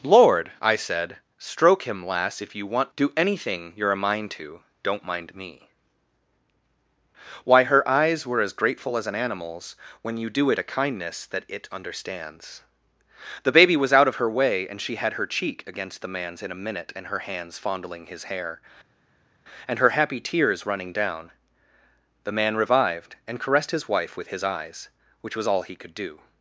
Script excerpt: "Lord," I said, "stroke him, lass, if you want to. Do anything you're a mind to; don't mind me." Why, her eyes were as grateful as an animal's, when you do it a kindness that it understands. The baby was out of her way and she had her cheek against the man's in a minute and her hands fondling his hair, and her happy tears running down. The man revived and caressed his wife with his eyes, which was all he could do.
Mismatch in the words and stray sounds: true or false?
true